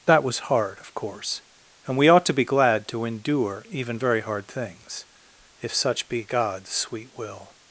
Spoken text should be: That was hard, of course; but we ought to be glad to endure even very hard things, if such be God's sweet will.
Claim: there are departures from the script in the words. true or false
true